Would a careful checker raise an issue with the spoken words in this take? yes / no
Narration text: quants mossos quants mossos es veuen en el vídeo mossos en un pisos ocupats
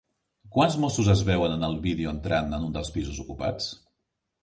yes